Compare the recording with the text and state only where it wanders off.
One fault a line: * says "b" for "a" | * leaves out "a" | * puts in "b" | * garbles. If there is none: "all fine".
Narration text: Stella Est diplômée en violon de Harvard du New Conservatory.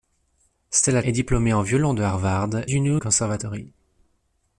all fine